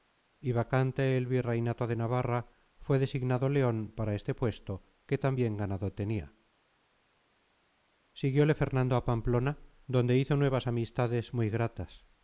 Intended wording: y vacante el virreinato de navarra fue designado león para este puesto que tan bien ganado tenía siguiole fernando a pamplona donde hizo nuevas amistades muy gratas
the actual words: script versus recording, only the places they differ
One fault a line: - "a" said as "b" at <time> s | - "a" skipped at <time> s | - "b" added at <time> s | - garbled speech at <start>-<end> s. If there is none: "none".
none